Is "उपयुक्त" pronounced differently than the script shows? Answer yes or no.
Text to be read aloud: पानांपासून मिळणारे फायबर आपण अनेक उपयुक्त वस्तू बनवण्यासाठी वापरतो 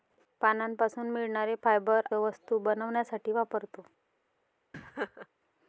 yes